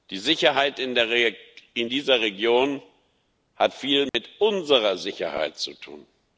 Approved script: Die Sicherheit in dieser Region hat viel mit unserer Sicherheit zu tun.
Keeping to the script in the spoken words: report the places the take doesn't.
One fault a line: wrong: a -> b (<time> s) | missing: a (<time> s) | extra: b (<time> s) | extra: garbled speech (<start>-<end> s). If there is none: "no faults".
no faults